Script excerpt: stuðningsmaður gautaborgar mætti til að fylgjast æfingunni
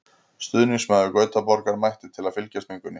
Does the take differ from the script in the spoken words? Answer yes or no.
no